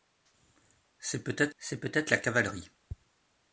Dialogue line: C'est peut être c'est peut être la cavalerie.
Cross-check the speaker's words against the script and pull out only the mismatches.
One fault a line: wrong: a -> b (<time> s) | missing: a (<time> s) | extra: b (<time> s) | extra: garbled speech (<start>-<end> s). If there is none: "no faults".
no faults